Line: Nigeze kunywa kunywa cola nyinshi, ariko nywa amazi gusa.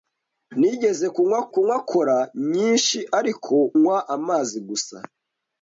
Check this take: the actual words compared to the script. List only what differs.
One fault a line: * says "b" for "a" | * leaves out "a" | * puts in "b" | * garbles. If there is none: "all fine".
all fine